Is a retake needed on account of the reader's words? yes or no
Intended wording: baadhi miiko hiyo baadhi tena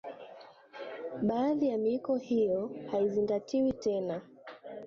yes